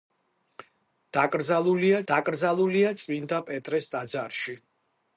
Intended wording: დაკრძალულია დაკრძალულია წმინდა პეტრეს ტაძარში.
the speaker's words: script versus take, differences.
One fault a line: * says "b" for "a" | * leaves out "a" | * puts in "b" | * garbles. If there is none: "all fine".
all fine